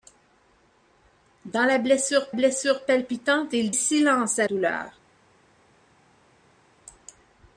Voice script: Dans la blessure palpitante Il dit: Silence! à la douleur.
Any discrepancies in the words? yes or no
yes